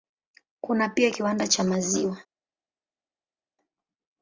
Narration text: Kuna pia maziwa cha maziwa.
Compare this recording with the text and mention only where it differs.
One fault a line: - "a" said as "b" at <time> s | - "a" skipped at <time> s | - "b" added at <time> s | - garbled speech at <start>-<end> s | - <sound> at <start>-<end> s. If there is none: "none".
- "maziwa" said as "kiwanda" at 1.1 s